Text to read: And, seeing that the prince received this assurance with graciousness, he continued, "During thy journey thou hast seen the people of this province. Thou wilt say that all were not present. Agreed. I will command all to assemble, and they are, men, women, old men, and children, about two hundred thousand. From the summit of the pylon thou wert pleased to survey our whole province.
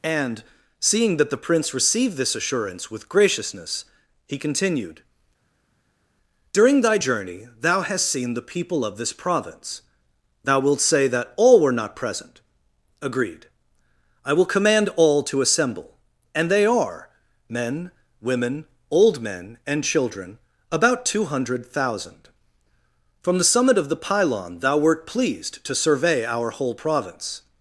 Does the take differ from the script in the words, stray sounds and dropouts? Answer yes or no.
no